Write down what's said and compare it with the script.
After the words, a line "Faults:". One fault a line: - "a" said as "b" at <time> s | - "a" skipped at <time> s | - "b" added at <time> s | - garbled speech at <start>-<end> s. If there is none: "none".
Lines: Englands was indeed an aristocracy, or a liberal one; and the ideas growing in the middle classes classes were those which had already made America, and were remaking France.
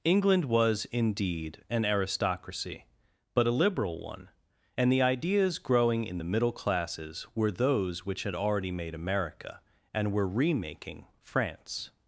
England was indeed an aristocracy, but a liberal one; and the ideas growing in the middle classes were those which had already made America, and were remaking France.
Faults:
- "Englands" said as "England" at 0.0 s
- "or" said as "but" at 3.4 s
- "classes" skipped at 7.3 s